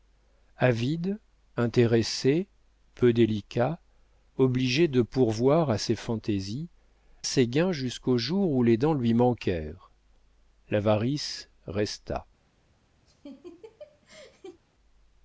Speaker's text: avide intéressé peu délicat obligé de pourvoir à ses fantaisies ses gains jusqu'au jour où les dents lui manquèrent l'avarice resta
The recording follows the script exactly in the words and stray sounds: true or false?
false